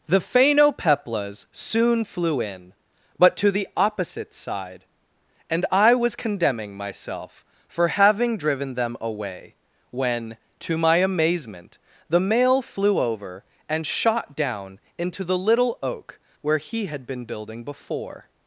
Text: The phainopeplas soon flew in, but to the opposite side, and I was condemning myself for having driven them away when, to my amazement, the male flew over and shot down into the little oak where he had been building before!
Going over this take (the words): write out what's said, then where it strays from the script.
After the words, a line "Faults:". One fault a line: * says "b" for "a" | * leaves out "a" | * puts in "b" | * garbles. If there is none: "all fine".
The phainopeplas soon flew in, but to the opposite side, and I was condemning myself for having driven them away when, to my amazement, the male flew over and shot down into the little oak where he had been building before!
Faults:
all fine